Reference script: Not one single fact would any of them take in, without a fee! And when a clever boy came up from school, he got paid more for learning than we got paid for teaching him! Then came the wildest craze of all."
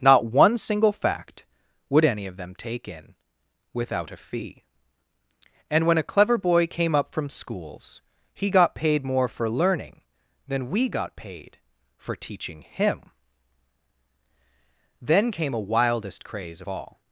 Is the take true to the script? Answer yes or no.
no